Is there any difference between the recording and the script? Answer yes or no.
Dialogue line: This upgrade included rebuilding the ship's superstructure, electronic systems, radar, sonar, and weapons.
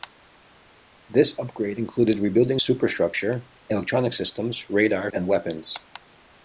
yes